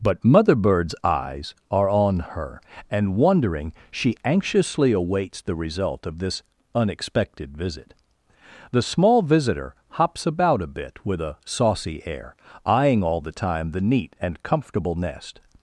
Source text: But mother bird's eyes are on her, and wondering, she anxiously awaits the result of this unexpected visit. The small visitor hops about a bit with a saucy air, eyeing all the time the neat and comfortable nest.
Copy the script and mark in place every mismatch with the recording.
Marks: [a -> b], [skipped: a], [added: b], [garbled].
But mother bird's eyes are on her, and wondering, she anxiously awaits the result of this unexpected visit. The small visitor hops about a bit with a saucy air, eyeing all the time the neat and comfortable nest.